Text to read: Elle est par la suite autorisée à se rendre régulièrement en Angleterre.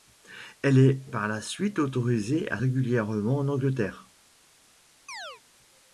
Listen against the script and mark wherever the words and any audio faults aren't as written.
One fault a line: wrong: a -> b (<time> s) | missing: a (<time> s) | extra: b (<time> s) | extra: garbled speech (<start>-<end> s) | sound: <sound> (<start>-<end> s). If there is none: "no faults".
missing: se rendre (2.6 s)
sound: chirp (5.1-5.4 s)